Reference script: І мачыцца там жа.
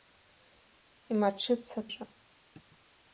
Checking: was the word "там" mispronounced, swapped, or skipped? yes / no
yes